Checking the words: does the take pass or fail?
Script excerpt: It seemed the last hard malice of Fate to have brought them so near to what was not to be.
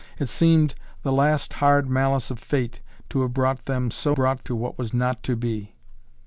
fail